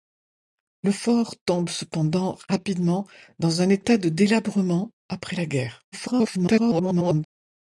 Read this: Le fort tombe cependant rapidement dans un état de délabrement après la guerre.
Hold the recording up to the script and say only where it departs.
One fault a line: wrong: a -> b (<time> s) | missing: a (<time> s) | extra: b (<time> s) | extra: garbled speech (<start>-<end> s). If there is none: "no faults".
extra: garbled speech (5.9-7.2 s)